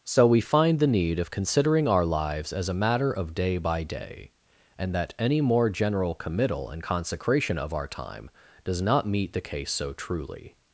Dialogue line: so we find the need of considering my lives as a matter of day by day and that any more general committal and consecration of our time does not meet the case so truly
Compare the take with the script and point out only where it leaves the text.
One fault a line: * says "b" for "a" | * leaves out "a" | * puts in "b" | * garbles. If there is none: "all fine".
* says "our" for "my"